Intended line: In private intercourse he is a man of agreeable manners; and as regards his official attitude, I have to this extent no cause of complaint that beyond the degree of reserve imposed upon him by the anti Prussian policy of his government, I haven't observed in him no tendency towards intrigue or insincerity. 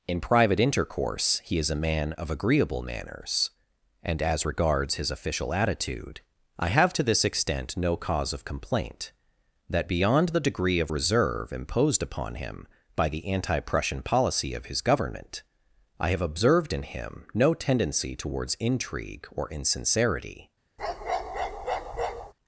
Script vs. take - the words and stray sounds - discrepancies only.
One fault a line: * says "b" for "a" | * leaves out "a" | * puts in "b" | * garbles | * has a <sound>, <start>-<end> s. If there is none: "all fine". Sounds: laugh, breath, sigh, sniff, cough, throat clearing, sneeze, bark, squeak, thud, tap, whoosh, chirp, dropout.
* says "have" for "haven't"
* has a bark, 20.8-22.3 s